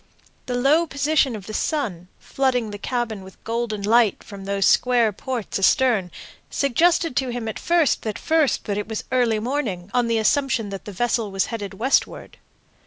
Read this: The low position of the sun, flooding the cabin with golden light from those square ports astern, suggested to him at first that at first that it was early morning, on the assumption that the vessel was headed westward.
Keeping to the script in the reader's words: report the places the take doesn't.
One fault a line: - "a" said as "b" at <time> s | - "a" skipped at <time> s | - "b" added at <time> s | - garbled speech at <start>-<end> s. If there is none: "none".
none